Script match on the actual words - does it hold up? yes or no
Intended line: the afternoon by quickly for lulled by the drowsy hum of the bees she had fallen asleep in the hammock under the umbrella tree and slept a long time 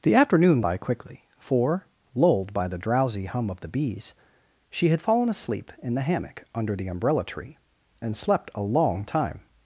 yes